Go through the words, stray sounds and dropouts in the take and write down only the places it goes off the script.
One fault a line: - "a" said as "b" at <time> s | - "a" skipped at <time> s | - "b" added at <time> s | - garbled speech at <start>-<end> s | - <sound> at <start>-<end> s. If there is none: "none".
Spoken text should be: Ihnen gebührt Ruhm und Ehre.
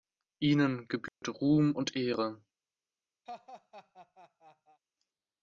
- dropout at 1.1-1.2 s
- laugh at 3.3-4.8 s